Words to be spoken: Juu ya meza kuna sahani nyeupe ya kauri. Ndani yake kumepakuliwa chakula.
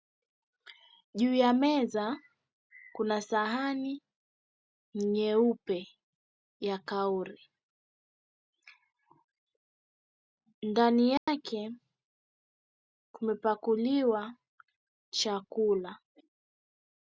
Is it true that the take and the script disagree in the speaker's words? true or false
false